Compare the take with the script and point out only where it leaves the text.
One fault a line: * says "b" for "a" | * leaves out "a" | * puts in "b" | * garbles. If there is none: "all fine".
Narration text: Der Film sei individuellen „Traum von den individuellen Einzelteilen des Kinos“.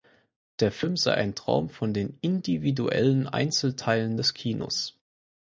* says "ein" for "individuellen"